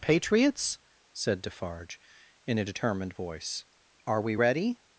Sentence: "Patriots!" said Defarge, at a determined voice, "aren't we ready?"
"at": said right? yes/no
no